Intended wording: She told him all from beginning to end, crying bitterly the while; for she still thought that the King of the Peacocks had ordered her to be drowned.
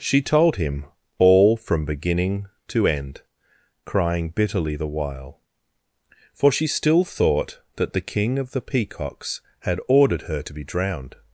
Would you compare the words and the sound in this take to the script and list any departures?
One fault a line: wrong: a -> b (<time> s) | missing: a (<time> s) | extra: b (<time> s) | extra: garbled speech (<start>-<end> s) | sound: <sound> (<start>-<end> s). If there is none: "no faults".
no faults